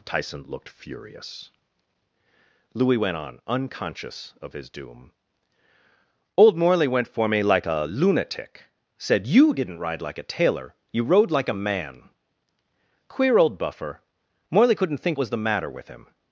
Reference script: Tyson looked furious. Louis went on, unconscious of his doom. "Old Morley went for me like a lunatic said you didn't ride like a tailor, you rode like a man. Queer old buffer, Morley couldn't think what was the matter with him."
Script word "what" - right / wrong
wrong